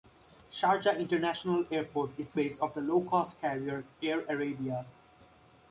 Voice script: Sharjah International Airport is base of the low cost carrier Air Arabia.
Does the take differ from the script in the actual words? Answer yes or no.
no